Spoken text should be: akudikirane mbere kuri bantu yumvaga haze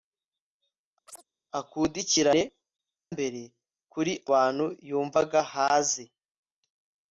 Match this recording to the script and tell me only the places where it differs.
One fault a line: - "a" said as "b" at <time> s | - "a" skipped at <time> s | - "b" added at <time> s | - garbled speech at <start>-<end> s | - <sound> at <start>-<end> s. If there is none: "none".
- chirp at 1.1-1.2 s